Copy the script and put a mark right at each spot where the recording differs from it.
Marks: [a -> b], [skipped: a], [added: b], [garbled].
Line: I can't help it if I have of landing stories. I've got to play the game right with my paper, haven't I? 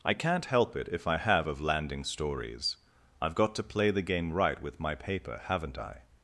I can't help it if I have of landing stories. I've got to play the game right with my paper, haven't I?